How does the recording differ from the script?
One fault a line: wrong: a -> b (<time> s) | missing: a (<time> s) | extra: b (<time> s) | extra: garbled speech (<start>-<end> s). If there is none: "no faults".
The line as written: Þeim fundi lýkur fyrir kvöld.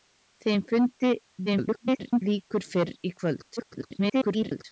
extra: garbled speech (1.5-2.2 s)
extra: garbled speech (3.6-4.6 s)